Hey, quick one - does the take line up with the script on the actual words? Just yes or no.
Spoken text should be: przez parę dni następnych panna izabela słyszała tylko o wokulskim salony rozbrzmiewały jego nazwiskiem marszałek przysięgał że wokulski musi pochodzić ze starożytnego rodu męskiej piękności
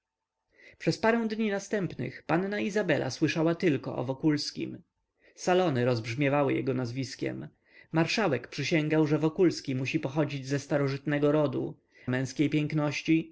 yes